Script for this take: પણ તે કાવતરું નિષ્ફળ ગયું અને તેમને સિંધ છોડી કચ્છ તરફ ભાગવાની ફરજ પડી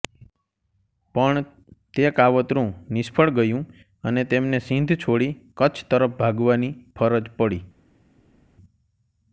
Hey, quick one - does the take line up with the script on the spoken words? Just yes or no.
yes